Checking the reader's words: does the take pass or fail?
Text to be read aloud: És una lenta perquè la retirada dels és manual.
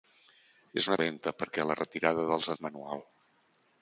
pass